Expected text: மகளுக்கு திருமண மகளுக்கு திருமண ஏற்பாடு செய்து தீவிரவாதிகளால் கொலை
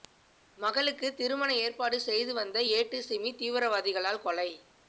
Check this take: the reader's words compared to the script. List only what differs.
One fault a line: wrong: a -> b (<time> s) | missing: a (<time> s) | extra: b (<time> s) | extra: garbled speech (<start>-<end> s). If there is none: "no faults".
wrong: மகளுக்கு திருமண ஏற்பாடு செய்து -> ஏற்பாடு செய்து வந்த ஏட்டு சிமி (1.6 s)